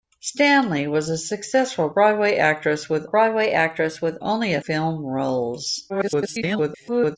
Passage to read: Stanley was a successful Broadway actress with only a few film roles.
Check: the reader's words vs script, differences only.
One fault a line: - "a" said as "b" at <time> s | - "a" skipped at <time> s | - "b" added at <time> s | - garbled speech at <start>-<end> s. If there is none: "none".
- "Broadway actress with" added at 3.0 s
- "few" skipped at 4.6 s
- garbled speech at 5.9-7.2 s